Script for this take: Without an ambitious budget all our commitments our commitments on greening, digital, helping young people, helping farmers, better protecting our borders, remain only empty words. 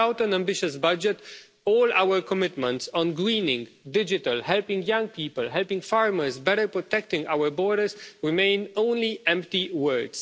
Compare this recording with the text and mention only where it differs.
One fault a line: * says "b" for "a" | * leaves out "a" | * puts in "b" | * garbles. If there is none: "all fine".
* leaves out "our commitments"